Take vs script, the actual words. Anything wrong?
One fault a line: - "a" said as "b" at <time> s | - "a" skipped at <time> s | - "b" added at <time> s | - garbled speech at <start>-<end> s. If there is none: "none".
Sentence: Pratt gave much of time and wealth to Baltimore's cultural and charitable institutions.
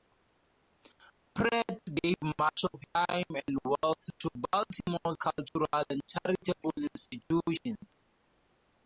none